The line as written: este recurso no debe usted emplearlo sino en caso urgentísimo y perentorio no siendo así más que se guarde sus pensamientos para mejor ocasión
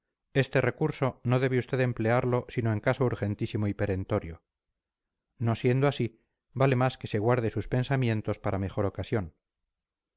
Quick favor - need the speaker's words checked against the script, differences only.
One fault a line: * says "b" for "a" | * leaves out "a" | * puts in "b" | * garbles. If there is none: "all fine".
* puts in "vale"